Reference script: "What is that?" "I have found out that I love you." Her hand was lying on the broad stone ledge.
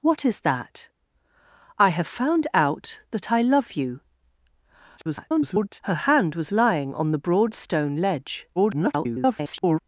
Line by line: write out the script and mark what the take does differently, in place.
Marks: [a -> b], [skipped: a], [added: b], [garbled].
"What is that?" "I have found out that I love you." [garbled] Her hand was lying on the broad stone ledge. [garbled]